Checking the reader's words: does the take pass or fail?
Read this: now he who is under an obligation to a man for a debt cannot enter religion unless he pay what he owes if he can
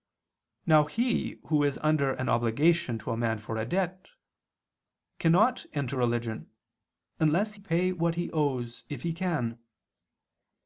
fail